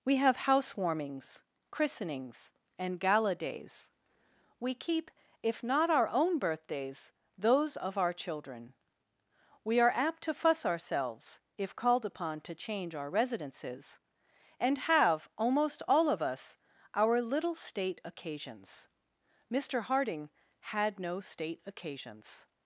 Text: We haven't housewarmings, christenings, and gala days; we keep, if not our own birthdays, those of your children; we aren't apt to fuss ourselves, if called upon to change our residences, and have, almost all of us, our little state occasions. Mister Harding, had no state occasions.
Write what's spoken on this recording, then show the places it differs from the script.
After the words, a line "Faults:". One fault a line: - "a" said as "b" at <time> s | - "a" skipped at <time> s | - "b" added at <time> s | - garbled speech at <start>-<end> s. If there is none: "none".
We have housewarmings, christenings, and gala days; we keep, if not our own birthdays, those of our children; we are apt to fuss ourselves, if called upon to change our residences, and have, almost all of us, our little state occasions. Mister Harding, had no state occasions.
Faults:
- "haven't" said as "have" at 0.1 s
- "your" said as "our" at 8.0 s
- "aren't" said as "are" at 9.8 s